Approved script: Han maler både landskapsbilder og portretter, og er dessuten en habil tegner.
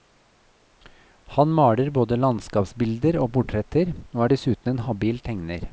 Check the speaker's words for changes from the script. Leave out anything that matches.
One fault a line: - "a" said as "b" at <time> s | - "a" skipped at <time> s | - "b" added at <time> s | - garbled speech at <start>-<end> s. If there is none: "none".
none